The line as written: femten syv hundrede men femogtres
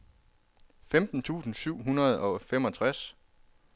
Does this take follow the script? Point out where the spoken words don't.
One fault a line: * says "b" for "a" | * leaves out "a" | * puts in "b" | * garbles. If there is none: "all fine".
* puts in "tusind"
* says "og" for "men"